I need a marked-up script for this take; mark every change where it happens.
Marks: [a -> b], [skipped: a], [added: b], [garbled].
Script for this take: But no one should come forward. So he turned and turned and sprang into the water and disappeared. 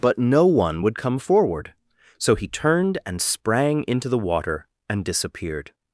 But no one [should -> would] come forward. So he turned and [skipped: turned and] sprang into the water and disappeared.